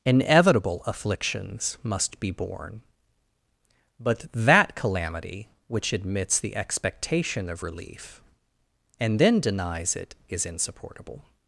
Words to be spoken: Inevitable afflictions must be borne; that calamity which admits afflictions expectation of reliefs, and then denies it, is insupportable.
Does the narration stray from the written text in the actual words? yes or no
yes